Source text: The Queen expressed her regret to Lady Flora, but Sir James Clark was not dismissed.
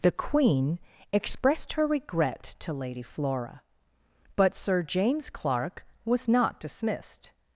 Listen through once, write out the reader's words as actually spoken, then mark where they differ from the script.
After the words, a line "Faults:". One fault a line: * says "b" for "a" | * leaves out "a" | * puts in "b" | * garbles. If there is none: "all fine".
The Queen expressed her regret to Lady Flora, but Sir James Clark was not dismissed.
Faults:
all fine